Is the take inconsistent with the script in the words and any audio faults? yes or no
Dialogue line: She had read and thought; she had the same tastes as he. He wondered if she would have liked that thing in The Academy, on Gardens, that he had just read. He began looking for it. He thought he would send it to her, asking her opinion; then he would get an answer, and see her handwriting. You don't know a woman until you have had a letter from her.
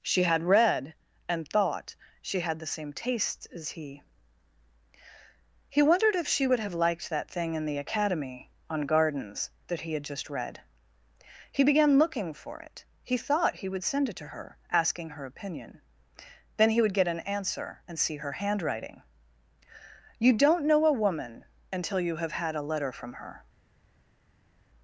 no